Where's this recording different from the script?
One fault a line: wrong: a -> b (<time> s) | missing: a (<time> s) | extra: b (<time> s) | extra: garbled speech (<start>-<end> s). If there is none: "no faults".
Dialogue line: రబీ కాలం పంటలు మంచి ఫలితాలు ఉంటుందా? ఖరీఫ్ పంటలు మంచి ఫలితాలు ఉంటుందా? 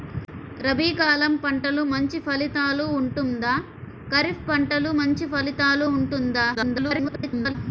extra: garbled speech (6.5-7.6 s)